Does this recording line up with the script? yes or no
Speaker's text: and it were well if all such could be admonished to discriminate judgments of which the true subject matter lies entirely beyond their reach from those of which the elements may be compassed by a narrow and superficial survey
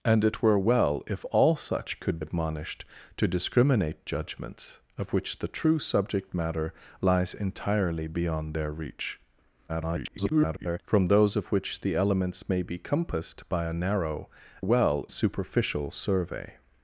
no